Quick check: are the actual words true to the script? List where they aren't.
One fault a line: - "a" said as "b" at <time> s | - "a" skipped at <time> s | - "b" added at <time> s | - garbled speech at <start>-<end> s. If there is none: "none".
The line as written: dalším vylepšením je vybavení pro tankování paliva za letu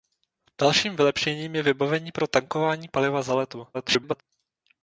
- garbled speech at 3.7-4.2 s